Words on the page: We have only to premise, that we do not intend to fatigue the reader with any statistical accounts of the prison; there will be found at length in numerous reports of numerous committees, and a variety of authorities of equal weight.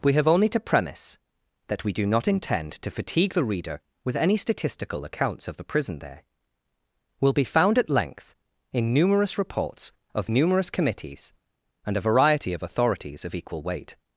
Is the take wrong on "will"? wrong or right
right